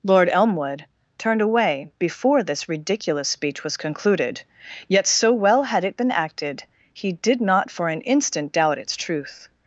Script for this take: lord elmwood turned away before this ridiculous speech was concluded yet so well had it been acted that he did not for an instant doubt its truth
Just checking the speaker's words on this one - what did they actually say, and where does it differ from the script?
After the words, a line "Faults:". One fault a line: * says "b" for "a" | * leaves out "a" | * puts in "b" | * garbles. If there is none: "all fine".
lord elmwood turned away before this ridiculous speech was concluded yet so well had it been acted he did not for an instant doubt its truth
Faults:
* leaves out "that"